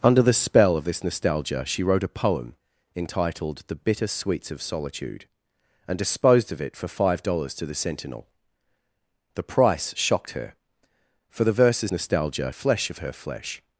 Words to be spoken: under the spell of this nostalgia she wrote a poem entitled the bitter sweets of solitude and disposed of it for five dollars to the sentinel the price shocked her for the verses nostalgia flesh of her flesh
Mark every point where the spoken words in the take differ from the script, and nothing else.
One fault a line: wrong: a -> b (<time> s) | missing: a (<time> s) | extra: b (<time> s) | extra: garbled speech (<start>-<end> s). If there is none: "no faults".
no faults